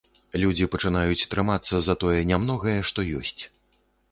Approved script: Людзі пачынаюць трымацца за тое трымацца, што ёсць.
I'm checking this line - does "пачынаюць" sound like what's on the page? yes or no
yes